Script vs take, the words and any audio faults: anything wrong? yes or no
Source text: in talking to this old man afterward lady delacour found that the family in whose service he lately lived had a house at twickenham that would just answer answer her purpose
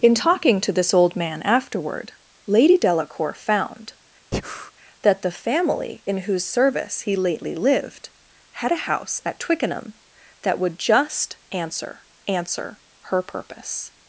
yes